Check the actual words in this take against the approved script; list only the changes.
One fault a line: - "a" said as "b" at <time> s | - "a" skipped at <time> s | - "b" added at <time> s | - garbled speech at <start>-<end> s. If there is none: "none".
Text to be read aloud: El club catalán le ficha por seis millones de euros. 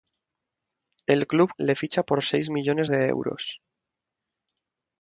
- "catalán" skipped at 1.5 s